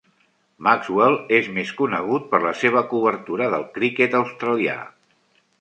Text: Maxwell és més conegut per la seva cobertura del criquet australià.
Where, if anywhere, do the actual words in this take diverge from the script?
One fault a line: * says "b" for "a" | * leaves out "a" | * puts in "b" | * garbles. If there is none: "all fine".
all fine